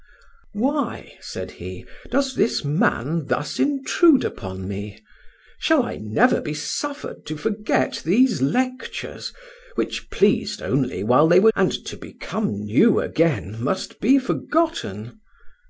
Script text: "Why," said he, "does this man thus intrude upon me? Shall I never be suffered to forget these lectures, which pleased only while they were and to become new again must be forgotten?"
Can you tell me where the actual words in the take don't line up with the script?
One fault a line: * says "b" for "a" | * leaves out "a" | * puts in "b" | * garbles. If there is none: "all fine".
all fine